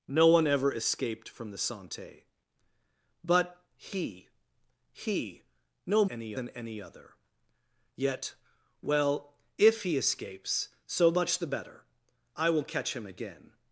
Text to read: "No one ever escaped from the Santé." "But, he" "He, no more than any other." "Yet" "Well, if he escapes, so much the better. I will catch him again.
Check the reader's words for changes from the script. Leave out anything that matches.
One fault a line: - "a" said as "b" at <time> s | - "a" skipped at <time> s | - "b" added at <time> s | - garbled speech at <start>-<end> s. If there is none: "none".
- "more" said as "any" at 6.0 s